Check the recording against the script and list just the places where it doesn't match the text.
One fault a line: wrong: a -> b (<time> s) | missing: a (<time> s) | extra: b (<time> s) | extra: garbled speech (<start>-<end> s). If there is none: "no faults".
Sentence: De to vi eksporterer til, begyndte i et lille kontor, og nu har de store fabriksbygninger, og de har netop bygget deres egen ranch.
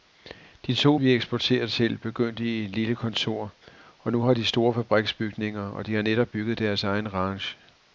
no faults